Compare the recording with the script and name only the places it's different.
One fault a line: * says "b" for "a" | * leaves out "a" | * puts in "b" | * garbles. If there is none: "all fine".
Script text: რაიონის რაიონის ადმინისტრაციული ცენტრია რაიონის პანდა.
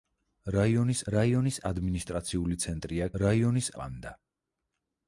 all fine